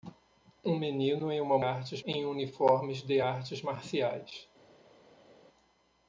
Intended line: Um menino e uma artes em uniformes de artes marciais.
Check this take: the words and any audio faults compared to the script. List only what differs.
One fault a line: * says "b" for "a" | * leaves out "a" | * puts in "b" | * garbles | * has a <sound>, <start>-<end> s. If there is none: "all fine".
all fine